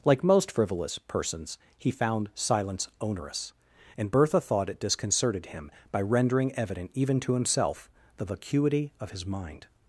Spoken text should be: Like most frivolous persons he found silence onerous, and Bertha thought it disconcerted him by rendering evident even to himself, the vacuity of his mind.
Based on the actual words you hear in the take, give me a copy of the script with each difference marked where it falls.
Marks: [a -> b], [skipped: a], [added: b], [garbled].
Like most frivolous persons he found silence onerous, and Bertha thought it disconcerted him by rendering evident even to himself, the vacuity of his mind.